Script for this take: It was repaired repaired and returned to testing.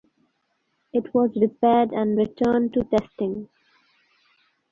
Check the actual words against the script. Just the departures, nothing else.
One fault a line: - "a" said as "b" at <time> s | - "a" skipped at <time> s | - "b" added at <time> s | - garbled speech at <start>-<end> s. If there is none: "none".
- "repaired" skipped at 1.9 s